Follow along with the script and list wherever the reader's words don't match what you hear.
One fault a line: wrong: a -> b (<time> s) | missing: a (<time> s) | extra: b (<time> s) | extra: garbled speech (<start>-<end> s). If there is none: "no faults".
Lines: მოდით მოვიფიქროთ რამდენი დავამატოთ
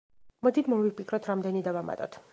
no faults